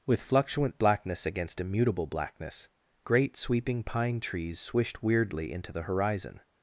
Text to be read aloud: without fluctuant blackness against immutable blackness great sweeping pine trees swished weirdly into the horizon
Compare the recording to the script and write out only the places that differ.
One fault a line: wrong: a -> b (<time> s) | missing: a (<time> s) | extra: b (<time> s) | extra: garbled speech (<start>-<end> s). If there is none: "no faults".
wrong: without -> with (0.1 s)